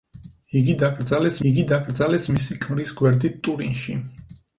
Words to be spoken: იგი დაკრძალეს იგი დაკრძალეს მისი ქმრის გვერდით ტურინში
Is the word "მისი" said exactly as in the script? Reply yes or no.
yes